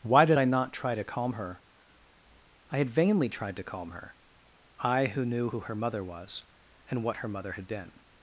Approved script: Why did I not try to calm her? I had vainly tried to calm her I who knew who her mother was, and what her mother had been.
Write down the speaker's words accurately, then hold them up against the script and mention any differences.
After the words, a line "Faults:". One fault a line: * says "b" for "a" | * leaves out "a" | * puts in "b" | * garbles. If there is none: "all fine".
Why did I not try to calm her? I had vainly tried to calm her I who knew who her mother was, and what her mother had been.
Faults:
all fine